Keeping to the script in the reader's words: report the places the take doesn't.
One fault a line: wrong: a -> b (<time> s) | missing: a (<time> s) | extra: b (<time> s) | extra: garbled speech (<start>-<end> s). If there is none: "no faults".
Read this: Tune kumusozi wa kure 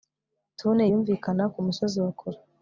extra: yumvikana (0.9 s)